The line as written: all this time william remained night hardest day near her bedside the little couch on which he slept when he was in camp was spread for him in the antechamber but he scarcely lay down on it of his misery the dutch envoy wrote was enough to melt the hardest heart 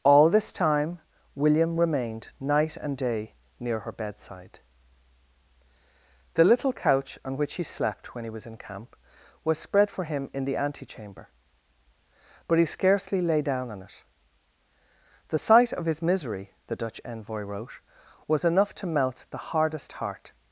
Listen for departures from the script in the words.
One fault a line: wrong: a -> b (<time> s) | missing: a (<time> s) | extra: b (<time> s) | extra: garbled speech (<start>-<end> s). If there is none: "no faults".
wrong: hardest -> and (2.8 s)
extra: the sight (15.3 s)